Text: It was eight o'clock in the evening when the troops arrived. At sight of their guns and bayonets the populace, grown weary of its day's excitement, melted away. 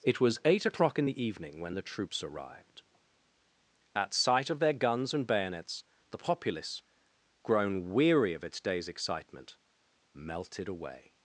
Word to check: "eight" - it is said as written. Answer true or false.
true